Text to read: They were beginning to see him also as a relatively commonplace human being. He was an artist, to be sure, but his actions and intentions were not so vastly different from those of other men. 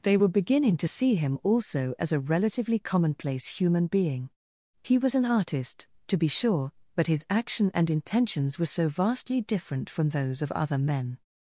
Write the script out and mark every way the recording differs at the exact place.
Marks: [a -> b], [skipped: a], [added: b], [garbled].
They were beginning to see him also as a relatively commonplace human being. He was an artist, to be sure, but his [actions -> action] and intentions were [skipped: not] so vastly different from those of other men.